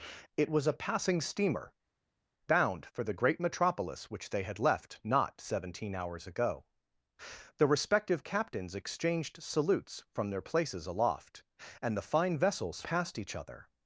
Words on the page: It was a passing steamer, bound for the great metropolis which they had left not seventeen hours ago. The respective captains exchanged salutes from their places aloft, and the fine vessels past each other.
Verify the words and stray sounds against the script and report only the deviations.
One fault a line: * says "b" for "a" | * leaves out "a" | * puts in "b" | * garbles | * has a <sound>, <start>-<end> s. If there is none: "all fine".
all fine